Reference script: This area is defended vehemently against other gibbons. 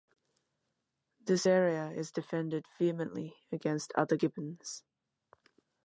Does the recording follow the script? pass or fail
pass